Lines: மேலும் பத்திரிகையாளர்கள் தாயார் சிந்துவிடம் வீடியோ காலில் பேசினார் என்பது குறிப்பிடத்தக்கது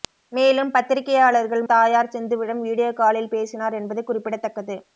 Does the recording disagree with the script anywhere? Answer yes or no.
no